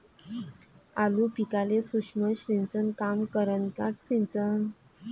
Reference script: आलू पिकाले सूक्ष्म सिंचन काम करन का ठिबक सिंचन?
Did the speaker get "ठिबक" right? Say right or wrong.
wrong